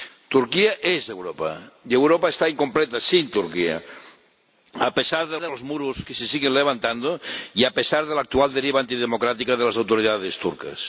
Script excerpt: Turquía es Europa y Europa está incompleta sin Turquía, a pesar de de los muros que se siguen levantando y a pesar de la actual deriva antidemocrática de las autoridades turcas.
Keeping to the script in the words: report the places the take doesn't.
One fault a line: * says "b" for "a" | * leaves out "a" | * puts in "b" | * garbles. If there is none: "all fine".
all fine